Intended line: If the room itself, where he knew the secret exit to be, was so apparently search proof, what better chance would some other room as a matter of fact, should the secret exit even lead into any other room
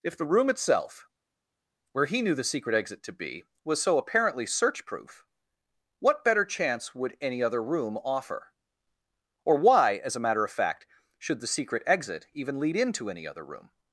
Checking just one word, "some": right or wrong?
wrong